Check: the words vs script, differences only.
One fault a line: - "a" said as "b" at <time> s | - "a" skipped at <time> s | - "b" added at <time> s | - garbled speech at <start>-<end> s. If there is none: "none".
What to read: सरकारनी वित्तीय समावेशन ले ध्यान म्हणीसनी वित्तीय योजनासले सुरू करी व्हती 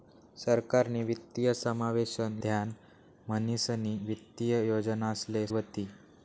- "ले" skipped at 2.4 s
- "सुरू करी" skipped at 5.5 s